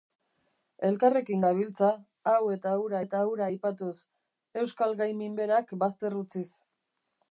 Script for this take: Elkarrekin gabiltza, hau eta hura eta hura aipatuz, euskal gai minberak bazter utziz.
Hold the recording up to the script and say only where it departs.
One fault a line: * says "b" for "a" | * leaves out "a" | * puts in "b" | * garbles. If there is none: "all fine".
all fine